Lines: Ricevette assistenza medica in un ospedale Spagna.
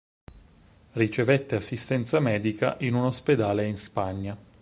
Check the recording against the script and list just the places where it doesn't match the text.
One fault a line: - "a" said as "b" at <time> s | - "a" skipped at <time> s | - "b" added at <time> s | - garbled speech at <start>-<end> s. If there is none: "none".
- "in" added at 3.7 s